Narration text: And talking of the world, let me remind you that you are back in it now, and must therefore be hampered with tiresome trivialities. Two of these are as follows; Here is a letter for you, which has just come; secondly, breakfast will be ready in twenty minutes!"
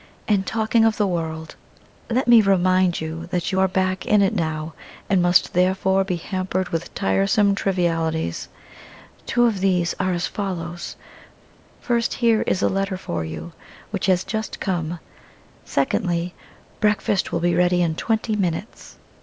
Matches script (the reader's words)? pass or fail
fail